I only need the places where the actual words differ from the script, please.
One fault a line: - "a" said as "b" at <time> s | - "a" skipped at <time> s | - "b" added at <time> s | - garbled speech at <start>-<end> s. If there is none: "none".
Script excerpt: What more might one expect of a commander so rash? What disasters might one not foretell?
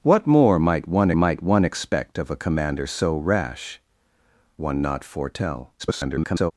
- "might one" added at 1.1 s
- "What disasters might" skipped at 3.8 s
- garbled speech at 5.8-6.5 s